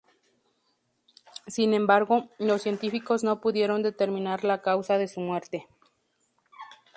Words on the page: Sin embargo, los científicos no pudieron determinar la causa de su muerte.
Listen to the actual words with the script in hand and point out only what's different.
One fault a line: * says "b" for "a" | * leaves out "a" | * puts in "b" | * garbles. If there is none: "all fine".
all fine